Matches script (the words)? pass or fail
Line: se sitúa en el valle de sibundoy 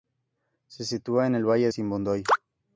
fail